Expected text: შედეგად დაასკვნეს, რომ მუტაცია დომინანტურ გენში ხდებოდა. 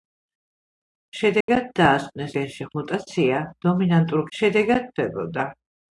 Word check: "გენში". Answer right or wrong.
wrong